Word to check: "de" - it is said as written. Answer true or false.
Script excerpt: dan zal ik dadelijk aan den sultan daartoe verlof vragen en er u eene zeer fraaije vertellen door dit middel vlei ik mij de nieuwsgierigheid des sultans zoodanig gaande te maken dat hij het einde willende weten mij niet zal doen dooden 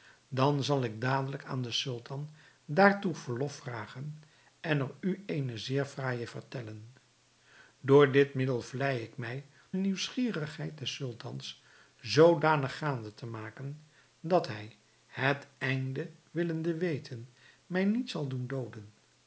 false